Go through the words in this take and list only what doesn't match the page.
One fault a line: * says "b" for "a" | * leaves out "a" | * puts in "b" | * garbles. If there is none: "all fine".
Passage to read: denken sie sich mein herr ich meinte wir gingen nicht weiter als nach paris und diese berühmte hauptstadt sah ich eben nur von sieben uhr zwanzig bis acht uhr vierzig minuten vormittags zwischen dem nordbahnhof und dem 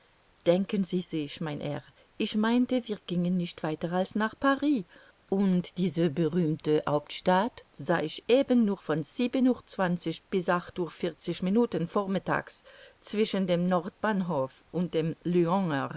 all fine